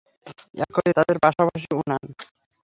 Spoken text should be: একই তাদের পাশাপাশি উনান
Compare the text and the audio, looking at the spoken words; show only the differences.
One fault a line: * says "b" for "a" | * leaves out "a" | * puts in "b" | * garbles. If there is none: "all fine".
all fine